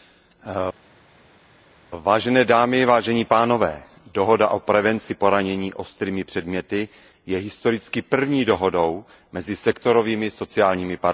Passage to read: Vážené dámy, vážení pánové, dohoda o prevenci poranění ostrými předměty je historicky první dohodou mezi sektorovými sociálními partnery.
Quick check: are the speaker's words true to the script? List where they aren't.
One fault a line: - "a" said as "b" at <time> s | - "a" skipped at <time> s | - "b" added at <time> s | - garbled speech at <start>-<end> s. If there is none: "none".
none